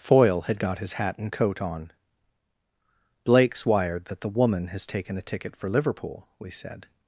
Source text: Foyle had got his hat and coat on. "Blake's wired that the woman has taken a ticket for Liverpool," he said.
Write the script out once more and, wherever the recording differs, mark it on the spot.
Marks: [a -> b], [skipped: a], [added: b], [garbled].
Foyle had got his hat and coat on. "Blake's wired that the woman has taken a ticket for Liverpool," [he -> we] said.